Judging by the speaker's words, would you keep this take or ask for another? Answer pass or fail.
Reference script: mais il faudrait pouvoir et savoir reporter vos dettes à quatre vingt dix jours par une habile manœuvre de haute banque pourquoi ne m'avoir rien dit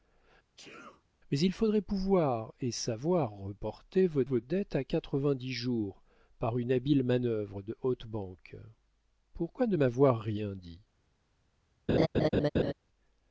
fail